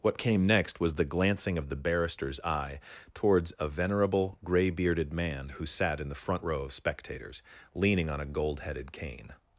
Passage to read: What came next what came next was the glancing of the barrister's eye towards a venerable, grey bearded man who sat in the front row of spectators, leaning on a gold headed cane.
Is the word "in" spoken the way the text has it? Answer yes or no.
yes